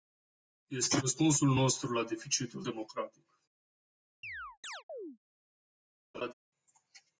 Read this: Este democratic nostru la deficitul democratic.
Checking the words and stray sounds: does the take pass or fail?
fail